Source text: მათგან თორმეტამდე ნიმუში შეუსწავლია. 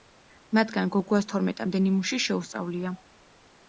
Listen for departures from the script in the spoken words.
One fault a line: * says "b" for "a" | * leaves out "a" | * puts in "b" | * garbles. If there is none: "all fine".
* puts in "გოგუას"